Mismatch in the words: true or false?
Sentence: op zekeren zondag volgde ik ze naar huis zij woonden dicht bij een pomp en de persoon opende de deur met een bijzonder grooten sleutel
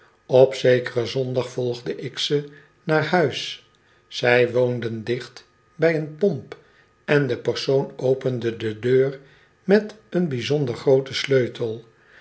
false